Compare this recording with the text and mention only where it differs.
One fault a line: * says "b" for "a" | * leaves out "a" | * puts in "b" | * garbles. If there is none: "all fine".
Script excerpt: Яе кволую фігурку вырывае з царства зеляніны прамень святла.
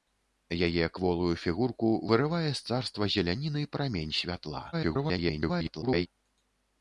* garbles